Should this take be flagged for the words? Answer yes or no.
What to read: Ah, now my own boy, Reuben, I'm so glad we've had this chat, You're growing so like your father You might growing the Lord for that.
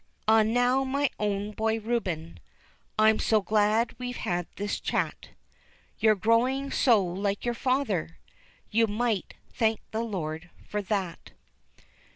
yes